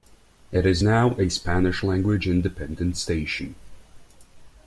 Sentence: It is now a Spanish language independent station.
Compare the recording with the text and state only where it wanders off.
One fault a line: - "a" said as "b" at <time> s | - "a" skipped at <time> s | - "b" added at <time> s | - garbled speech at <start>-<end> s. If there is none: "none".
none